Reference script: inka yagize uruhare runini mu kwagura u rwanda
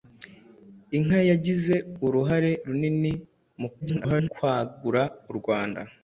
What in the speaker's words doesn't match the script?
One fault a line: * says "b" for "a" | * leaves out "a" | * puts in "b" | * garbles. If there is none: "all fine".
* garbles